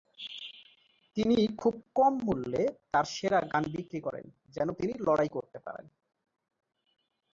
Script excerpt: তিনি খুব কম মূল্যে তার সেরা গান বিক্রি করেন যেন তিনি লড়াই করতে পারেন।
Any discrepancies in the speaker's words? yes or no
no